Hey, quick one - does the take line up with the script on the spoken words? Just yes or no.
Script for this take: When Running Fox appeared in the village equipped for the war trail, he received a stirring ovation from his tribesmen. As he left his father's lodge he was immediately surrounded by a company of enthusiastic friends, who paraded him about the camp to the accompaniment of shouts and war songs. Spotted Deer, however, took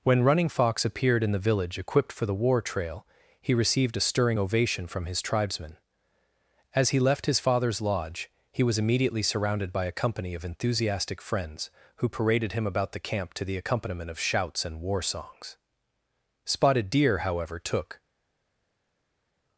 yes